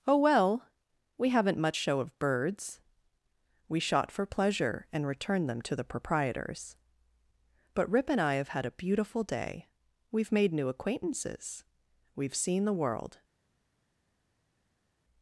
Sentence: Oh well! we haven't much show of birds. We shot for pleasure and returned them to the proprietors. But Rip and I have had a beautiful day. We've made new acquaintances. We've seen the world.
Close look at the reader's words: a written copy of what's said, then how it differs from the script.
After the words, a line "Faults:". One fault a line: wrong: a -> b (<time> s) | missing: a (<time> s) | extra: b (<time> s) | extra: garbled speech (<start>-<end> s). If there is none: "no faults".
Oh well! we haven't much show of birds. We shot for pleasure and returned them to the proprietors. But Rip and I have had a beautiful day. We've made new acquaintances. We've seen the world.
Faults:
no faults